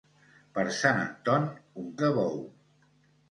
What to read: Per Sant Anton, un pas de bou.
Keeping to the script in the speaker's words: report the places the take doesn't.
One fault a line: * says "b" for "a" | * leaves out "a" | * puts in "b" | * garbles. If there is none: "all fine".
* leaves out "pas"